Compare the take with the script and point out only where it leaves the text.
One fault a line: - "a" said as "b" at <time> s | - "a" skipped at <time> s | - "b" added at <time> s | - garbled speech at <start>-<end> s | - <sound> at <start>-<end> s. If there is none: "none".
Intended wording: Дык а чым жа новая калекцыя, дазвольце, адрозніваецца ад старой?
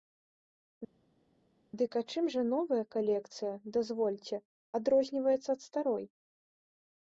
none